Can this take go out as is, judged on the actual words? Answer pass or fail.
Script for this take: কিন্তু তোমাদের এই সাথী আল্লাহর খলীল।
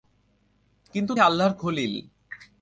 fail